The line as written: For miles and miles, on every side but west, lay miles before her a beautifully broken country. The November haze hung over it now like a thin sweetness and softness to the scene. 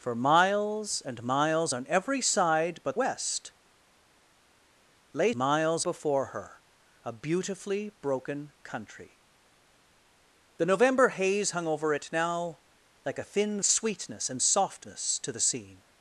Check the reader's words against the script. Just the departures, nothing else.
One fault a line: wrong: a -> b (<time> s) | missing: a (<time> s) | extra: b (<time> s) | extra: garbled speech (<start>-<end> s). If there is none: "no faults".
no faults